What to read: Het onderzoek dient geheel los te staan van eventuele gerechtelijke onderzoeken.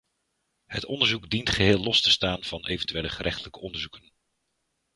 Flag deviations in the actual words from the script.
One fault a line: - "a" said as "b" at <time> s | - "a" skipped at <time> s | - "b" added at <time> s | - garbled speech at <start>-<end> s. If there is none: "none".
none